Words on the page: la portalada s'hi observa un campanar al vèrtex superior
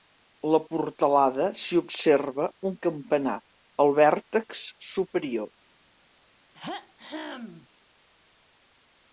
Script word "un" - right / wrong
right